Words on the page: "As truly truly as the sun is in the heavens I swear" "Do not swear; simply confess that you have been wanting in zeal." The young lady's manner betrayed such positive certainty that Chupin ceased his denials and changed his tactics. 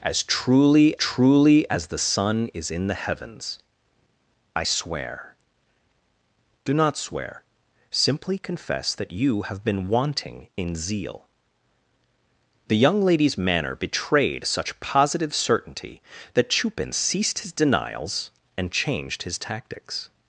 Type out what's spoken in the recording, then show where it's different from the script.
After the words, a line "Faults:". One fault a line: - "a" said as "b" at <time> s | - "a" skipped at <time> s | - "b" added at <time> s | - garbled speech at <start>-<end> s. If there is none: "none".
"As truly truly as the sun is in the heavens I swear" "Do not swear; simply confess that you have been wanting in zeal." The young lady's manner betrayed such positive certainty that Chupin ceased his denials and changed his tactics.
Faults:
none